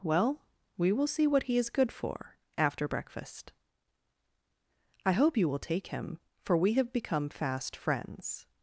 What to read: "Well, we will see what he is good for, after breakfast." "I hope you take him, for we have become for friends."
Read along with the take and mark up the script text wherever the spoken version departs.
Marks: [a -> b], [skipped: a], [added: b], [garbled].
"Well, we will see what he is good for, after breakfast." "I hope you [added: will] take him, for we have become [for -> fast] friends."